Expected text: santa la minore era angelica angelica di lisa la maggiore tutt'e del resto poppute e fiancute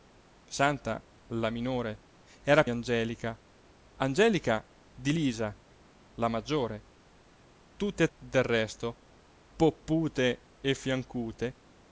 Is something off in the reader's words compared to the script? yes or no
no